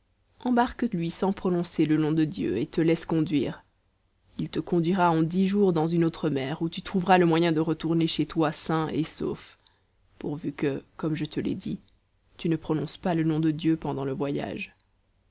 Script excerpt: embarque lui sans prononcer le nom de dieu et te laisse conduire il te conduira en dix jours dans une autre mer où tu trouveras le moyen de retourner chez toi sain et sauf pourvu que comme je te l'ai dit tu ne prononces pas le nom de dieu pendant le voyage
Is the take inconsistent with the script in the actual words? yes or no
no